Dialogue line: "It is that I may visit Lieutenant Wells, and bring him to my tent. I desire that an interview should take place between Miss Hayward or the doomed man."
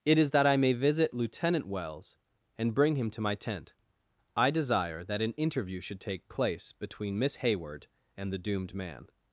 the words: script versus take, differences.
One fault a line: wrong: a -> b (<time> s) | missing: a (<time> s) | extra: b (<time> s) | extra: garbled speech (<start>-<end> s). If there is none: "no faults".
wrong: or -> and (8.1 s)